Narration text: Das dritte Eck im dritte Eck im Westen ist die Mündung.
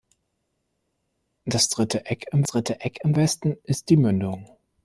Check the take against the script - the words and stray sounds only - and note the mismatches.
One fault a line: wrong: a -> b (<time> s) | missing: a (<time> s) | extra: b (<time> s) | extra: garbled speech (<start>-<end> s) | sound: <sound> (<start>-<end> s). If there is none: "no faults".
no faults